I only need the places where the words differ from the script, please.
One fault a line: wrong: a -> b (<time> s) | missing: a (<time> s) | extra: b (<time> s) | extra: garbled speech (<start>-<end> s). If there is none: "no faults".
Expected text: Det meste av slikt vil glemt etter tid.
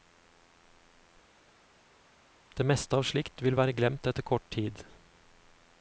extra: være (3.6 s)
extra: kort (4.3 s)